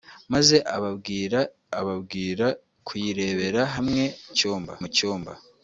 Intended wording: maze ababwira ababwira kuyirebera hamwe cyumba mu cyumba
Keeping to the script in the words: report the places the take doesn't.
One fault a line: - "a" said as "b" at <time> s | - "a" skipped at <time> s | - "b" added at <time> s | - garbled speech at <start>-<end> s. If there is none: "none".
none